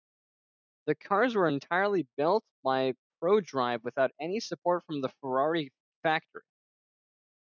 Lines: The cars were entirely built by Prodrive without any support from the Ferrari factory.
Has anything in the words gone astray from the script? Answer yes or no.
no